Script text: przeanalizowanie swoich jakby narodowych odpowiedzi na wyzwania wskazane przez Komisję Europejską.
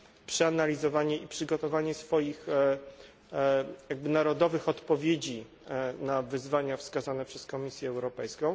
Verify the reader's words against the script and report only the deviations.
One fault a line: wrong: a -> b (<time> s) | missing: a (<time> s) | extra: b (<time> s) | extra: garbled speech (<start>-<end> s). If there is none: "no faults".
extra: i przygotowanie (1.2 s)